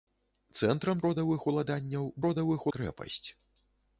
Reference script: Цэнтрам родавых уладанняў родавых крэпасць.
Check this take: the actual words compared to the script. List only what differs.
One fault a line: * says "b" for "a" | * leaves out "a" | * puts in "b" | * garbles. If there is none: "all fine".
all fine